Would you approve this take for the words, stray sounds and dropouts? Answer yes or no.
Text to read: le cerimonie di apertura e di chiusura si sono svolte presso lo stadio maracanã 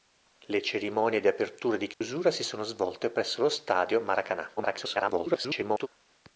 no